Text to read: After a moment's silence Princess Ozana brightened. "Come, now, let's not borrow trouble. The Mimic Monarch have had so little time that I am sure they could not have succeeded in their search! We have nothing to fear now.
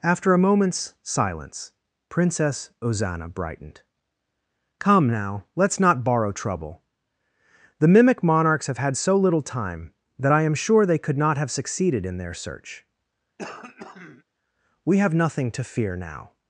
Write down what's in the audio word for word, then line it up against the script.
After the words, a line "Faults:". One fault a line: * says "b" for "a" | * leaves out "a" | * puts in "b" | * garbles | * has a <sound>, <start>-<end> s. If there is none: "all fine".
After a moment's silence Princess Ozana brightened. "Come, now, let's not borrow trouble. The Mimic Monarchs have had so little time that I am sure they could not have succeeded in their search! We have nothing to fear now.
Faults:
* says "Monarchs" for "Monarch"
* has a throat clearing, 13.4-14.2 s